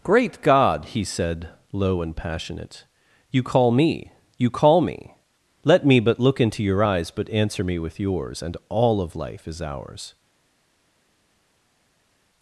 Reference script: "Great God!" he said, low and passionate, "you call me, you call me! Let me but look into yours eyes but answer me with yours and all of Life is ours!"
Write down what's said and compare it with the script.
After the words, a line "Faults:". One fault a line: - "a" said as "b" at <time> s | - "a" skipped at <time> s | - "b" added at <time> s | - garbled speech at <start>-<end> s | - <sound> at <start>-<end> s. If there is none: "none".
"Great God!" he said, low and passionate, "you call me, you call me! Let me but look into your eyes but answer me with yours and all of Life is ours!"
Faults:
- "yours" said as "your" at 6.6 s